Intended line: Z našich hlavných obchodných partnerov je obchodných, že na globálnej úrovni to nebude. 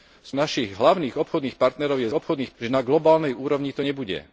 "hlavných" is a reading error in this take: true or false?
false